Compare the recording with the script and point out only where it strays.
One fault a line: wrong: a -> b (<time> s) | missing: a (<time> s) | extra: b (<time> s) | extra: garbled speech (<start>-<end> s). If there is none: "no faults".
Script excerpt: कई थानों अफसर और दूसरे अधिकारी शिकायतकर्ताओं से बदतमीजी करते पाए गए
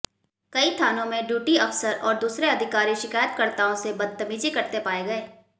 extra: में ड्यूटी (1.1 s)